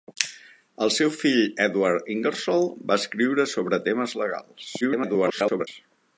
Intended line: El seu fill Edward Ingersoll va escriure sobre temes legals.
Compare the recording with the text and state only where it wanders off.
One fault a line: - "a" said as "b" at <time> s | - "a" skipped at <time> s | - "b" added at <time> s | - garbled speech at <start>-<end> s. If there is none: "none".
- garbled speech at 4.8-5.7 s